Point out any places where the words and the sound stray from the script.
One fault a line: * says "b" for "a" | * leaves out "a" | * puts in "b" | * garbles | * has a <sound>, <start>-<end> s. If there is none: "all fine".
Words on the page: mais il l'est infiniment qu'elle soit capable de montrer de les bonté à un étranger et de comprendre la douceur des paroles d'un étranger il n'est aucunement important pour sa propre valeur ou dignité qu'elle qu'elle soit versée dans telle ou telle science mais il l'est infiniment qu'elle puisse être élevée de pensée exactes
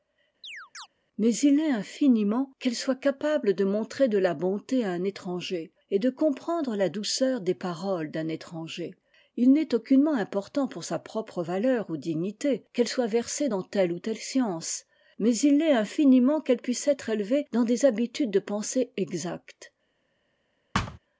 * has a chirp, 0.4-0.9 s
* says "la" for "les"
* leaves out "qu'elle"
* puts in "dans des habitudes"
* has a thud, 20.7-21.0 s